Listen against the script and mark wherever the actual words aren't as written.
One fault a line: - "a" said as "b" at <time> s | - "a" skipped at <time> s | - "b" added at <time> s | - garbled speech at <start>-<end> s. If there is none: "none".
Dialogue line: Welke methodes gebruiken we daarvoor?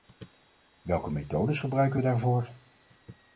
none